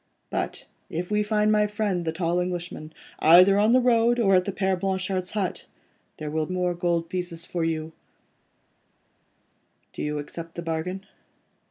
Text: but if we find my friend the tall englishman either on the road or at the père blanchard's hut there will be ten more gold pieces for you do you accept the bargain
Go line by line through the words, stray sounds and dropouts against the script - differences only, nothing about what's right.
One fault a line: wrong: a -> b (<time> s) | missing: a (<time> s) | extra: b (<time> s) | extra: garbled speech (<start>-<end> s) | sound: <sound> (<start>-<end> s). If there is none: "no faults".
missing: be ten (6.5 s)